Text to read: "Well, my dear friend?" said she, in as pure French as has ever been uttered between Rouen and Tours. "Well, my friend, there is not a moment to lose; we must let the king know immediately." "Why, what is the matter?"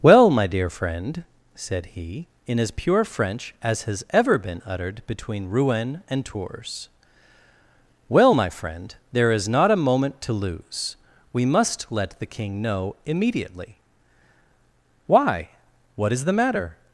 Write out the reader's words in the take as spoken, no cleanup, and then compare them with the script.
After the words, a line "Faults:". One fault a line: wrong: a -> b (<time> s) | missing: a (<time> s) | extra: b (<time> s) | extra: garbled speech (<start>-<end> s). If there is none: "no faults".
"Well, my dear friend?" said he, in as pure French as has ever been uttered between Rouen and Tours. "Well, my friend, there is not a moment to lose; we must let the king know immediately." "Why, what is the matter?"
Faults:
wrong: she -> he (1.9 s)